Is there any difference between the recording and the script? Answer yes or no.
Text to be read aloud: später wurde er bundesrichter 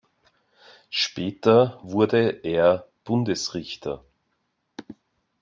no